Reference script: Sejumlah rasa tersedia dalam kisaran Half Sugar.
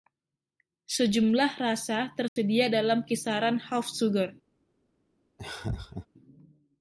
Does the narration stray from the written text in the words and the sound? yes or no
yes